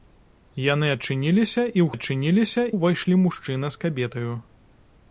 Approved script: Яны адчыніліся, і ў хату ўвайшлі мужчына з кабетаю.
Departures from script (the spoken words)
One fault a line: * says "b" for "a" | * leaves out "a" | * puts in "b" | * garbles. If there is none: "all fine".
* says "адчыніліся" for "хату"